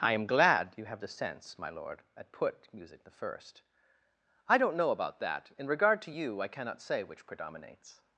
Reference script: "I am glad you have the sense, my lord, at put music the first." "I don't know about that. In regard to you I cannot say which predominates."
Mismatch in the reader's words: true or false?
false